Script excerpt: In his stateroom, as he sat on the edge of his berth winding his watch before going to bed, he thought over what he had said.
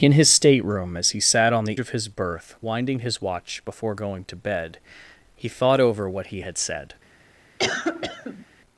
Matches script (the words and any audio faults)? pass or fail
fail